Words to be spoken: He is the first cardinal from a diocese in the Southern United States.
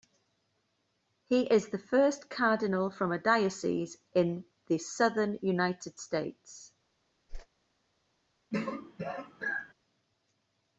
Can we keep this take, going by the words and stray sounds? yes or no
no